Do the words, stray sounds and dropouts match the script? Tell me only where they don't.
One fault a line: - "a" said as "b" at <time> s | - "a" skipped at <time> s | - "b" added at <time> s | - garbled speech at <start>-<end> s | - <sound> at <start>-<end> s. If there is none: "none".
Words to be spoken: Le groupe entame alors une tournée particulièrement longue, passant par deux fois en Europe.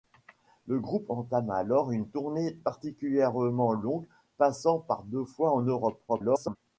- garbled speech at 6.1-6.6 s